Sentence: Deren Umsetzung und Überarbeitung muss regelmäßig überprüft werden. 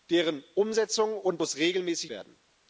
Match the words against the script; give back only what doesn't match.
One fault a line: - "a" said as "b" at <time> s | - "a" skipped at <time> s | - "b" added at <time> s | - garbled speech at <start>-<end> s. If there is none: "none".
- "Überarbeitung" skipped at 1.4 s
- "überprüft" skipped at 2.1 s